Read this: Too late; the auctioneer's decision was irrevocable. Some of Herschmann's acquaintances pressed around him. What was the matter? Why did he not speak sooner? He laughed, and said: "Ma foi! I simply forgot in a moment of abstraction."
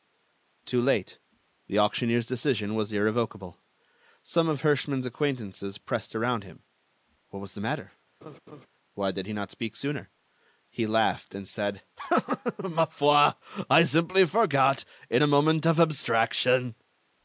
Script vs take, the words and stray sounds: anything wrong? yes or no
yes